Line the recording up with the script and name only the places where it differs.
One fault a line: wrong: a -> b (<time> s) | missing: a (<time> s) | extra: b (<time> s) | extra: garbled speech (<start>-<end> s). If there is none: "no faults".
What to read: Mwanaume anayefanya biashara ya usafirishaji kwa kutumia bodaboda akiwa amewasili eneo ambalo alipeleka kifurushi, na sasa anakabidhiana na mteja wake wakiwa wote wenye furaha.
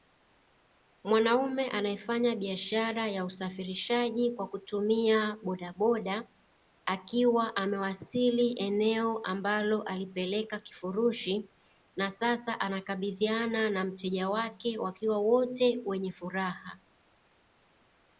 no faults